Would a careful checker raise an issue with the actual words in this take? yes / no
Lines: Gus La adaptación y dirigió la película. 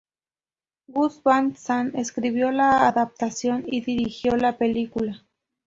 yes